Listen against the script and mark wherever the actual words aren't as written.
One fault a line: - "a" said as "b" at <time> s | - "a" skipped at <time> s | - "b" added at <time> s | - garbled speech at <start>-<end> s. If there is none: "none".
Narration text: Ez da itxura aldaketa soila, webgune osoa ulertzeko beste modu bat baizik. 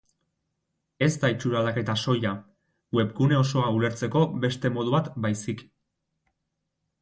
none